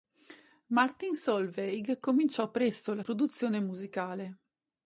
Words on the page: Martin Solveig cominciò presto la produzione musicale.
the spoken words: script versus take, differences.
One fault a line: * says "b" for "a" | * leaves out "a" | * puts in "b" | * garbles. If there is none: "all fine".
all fine